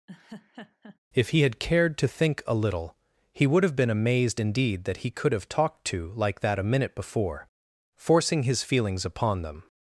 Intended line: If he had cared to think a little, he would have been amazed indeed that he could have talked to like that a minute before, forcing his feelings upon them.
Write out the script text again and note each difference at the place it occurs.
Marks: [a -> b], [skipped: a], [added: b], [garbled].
If he had cared to think a little, he would have been amazed indeed that he could have talked to like that a minute before, forcing his feelings upon them.